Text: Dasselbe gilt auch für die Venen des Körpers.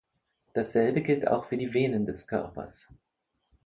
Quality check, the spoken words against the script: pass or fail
pass